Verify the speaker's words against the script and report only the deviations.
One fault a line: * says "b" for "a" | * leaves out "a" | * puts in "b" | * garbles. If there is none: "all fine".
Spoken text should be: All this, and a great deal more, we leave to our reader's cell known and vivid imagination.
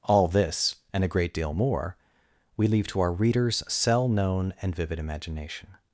all fine